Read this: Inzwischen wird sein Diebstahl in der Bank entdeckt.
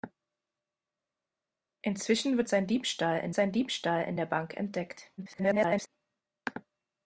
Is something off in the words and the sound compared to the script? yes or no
yes